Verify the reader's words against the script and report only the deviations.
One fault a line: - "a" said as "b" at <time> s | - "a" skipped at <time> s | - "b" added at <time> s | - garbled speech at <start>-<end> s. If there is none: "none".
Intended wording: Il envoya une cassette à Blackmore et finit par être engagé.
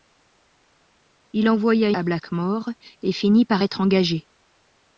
- "une cassette" skipped at 1.9 s